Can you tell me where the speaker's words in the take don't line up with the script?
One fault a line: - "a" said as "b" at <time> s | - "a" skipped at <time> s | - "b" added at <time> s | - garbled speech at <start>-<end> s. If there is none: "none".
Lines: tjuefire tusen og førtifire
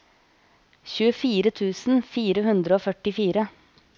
- "fire hundre" added at 2.1 s